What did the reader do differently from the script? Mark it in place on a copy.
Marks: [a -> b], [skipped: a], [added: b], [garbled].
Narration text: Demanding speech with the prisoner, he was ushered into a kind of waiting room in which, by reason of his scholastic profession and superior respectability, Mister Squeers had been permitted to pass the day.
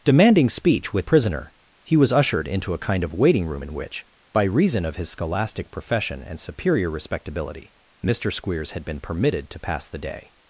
Demanding speech with [skipped: the] prisoner, he was ushered into a kind of waiting room in which, by reason of his scholastic profession and superior respectability, Mister Squeers had been permitted to pass the day.